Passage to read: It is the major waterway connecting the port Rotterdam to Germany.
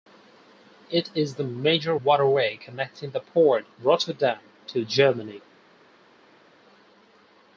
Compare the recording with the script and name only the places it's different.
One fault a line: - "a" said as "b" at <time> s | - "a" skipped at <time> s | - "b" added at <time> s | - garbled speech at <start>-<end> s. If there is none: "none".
none